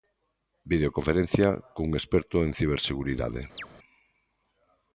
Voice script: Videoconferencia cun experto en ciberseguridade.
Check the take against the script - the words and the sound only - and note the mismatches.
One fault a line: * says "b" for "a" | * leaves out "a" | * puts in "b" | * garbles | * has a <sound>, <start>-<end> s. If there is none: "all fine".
* has a chirp, 3.6-3.7 s